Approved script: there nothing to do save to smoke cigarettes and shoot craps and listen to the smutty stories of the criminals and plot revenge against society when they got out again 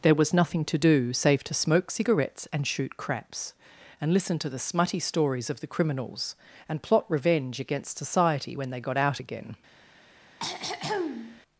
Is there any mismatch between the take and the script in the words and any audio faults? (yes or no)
yes